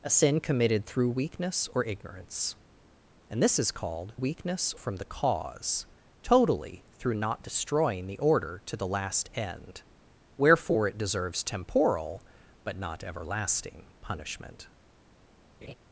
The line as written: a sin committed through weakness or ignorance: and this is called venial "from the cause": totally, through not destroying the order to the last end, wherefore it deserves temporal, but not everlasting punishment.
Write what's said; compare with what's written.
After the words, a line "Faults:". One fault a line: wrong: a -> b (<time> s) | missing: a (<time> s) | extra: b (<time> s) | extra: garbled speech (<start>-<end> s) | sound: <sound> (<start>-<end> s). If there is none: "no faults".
a sin committed through weakness or ignorance: and this is called weakness "from the cause": totally, through not destroying the order to the last end, wherefore it deserves temporal, but not everlasting punishment.
Faults:
wrong: venial -> weakness (4.1 s)
sound: laugh (15.6-15.7 s)